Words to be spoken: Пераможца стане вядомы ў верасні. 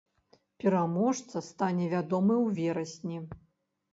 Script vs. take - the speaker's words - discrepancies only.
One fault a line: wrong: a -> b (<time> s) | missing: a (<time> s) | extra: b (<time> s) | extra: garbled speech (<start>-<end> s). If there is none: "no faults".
no faults